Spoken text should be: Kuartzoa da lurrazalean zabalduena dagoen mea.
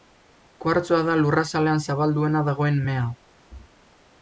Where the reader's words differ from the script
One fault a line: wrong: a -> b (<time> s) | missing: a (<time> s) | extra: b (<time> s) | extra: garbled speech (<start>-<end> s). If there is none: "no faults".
no faults